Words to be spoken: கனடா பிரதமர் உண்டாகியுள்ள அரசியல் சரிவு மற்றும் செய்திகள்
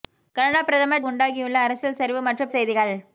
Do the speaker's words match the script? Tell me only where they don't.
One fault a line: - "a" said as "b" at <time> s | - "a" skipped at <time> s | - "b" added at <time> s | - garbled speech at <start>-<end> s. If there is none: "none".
none